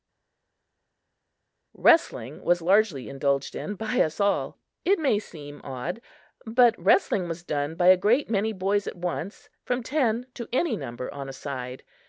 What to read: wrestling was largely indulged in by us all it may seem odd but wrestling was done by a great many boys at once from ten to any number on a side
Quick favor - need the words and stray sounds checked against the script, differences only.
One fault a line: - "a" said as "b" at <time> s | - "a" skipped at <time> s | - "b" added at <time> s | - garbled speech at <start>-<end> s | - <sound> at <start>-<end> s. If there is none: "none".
none